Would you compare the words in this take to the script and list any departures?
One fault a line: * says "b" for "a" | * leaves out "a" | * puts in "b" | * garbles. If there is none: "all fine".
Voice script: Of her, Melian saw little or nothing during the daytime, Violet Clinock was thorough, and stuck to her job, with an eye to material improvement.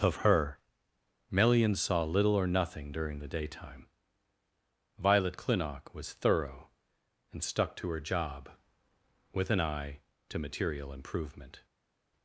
all fine